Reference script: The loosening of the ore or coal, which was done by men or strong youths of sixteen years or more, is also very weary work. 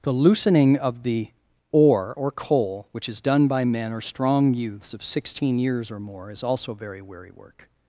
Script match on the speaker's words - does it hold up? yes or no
no